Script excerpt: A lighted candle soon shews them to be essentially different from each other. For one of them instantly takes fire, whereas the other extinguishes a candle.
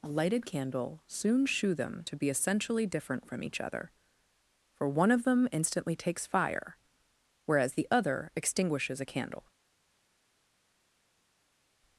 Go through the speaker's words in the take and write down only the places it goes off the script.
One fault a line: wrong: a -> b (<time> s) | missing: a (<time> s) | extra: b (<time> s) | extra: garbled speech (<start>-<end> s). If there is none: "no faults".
wrong: shews -> shew (1.4 s)